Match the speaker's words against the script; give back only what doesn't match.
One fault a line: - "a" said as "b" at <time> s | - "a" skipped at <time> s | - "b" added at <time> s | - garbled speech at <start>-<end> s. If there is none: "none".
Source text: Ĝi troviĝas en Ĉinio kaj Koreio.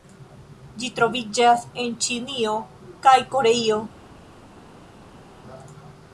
none